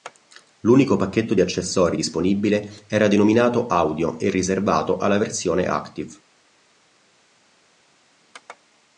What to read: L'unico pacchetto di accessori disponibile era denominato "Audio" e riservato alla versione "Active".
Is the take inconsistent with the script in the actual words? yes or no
no